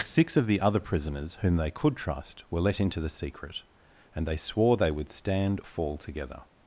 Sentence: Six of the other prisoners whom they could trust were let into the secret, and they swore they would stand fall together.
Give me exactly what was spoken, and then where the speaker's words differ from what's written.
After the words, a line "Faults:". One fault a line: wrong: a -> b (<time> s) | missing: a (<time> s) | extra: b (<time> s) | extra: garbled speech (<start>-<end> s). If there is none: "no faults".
Six of the other prisoners whom they could trust were let into the secret, and they swore they would stand fall together.
Faults:
no faults